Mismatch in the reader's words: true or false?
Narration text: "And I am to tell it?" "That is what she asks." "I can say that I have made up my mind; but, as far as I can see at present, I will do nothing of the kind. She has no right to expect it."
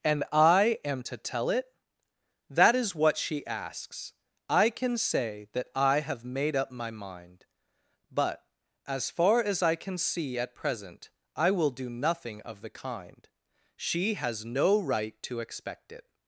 false